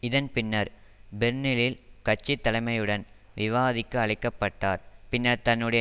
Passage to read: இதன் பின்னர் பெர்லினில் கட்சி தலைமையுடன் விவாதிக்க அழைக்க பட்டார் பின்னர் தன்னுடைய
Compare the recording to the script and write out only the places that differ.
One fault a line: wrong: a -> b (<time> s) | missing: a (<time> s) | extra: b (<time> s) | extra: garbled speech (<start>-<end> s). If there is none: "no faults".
no faults